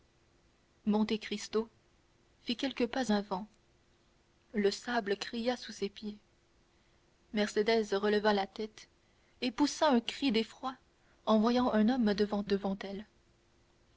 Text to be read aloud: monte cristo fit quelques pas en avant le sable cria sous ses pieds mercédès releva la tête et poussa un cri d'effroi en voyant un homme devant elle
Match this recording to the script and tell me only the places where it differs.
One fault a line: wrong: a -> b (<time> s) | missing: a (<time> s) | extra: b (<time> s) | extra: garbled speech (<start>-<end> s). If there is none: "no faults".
missing: en (3.1 s)
extra: devant (12.4 s)